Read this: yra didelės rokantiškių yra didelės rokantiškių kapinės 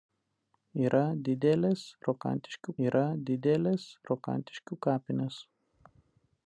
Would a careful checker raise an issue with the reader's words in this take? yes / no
no